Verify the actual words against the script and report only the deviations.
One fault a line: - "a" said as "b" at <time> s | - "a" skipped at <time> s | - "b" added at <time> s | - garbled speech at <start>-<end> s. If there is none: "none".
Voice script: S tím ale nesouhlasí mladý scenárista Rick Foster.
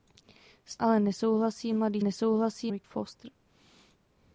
- "tím" skipped at 0.8 s
- "scenárista" said as "nesouhlasí" at 2.0 s